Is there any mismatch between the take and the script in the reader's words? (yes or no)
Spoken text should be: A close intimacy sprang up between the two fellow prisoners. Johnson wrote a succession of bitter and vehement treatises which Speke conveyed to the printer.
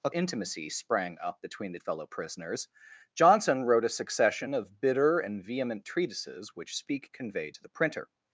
yes